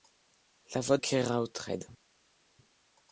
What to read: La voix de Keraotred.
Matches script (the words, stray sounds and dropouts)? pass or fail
fail